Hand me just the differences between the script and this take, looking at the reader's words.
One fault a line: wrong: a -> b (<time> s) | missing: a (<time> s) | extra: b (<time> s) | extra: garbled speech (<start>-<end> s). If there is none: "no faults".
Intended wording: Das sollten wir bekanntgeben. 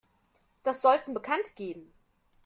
missing: wir (1.1 s)